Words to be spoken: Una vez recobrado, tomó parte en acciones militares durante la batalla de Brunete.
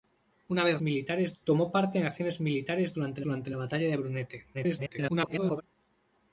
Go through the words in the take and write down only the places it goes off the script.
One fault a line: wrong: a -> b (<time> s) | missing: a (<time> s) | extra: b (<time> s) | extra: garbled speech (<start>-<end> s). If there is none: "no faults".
wrong: recobrado -> militares (0.8 s)
extra: durante (3.2 s)
extra: garbled speech (4.5-5.6 s)